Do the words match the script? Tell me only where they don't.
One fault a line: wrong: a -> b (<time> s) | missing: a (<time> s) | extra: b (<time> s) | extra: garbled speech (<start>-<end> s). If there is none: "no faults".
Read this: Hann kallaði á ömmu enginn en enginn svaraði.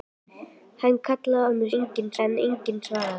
no faults